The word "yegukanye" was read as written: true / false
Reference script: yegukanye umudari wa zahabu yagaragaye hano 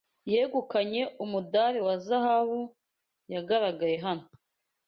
true